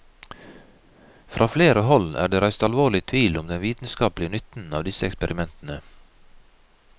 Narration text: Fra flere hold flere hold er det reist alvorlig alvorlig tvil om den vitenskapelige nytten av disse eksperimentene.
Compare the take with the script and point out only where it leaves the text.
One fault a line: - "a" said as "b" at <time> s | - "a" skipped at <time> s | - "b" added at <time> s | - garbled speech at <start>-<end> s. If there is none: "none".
- "flere hold" skipped at 2.1 s
- "alvorlig" skipped at 3.0 s